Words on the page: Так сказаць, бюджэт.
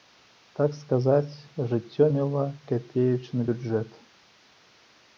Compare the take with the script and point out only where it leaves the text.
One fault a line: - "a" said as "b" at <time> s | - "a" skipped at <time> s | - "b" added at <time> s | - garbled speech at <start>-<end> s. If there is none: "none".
- "жыццё мела капеечны" added at 1.7 s